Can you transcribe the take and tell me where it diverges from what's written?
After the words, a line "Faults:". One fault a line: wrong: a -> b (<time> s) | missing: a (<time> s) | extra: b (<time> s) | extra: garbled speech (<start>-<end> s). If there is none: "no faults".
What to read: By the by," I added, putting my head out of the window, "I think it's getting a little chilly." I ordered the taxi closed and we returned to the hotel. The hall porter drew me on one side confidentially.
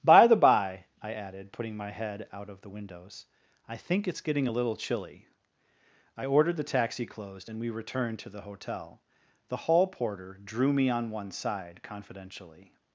By the by," I added, putting my head out of the windows, "I think it's getting a little chilly." I ordered the taxi closed and we returned to the hotel. The hall porter drew me on one side confidentially.
Faults:
wrong: window -> windows (2.7 s)